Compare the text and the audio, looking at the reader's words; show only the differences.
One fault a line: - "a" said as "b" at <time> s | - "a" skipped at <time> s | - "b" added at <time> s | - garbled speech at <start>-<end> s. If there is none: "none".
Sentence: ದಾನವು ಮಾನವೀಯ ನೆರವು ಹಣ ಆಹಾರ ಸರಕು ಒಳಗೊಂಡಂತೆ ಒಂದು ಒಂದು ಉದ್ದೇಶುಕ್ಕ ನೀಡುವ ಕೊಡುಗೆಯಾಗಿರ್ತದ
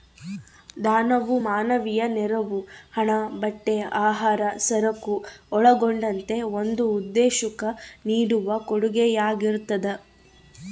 - "ಬಟ್ಟೆ" added at 3.4 s
- "ಒಂದು" skipped at 6.9 s